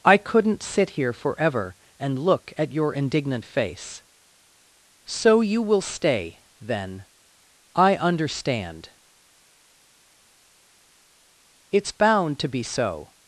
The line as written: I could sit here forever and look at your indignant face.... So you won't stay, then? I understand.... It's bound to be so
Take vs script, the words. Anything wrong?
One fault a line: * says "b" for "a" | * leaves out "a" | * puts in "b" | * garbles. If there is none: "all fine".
* says "couldn't" for "could"
* says "will" for "won't"